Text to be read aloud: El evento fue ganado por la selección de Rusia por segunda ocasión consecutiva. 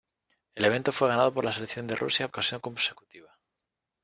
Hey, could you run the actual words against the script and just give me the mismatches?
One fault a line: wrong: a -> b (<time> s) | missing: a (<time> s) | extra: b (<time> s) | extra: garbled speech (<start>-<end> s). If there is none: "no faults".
missing: por segunda (2.3 s)